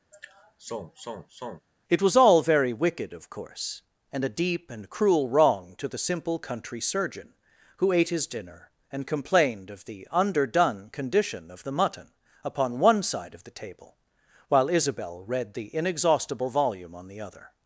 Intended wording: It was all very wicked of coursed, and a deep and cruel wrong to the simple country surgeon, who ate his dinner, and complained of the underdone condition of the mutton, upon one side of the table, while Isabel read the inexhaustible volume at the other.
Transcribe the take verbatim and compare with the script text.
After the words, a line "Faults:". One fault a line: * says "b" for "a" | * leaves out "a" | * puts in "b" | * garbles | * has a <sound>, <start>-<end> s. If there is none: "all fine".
It was all very wicked of course, and a deep and cruel wrong to the simple country surgeon, who ate his dinner, and complained of the underdone condition of the mutton, upon one side of the table, while Isabel read the inexhaustible volume on the other.
Faults:
* has a sigh, 0.1-1.7 s
* says "course" for "coursed"
* says "on" for "at"